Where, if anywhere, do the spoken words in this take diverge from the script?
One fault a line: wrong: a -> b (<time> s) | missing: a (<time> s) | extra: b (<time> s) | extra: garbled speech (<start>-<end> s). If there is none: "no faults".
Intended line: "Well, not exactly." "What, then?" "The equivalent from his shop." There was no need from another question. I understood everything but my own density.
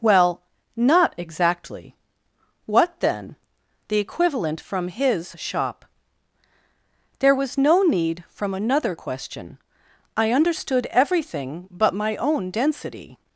no faults